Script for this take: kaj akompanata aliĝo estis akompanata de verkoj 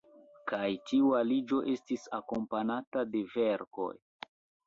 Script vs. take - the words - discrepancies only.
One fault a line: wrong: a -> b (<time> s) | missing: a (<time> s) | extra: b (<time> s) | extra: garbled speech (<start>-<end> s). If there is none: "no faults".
wrong: akompanata -> tiu (0.9 s)